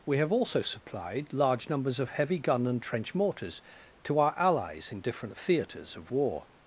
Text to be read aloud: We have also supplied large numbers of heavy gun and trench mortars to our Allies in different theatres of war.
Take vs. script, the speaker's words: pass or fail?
pass